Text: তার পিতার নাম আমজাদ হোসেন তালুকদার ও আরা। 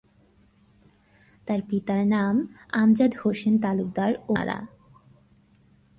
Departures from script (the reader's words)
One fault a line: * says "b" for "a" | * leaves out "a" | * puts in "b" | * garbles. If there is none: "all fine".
all fine